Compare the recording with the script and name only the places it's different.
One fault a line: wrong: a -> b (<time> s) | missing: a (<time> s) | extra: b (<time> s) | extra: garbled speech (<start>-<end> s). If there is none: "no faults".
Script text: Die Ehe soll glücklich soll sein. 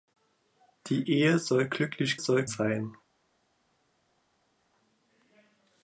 no faults